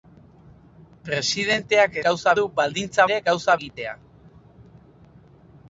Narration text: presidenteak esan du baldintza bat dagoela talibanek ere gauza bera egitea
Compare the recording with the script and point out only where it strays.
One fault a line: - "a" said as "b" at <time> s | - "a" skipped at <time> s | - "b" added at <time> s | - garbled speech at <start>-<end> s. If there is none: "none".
- "esan" said as "gauza" at 2.1 s
- "bat dagoela talibanek" skipped at 3.1 s
- "bera" skipped at 3.6 s